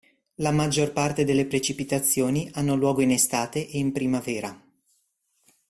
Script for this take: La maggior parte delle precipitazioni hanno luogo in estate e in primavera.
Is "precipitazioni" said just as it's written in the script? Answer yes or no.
yes